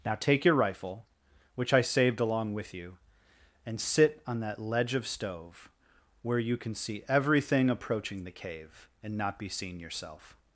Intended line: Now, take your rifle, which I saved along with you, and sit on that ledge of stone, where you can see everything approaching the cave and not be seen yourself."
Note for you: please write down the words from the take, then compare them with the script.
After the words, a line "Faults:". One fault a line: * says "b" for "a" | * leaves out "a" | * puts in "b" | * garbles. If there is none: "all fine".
Now, take your rifle, which I saved along with you, and sit on that ledge of stove, where you can see everything approaching the cave and not be seen yourself."
Faults:
* says "stove" for "stone"